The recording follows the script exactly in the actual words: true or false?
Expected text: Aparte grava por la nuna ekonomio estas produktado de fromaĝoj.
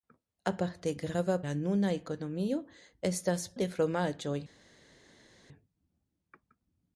false